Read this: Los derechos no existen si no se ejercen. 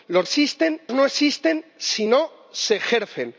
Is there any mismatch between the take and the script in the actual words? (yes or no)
yes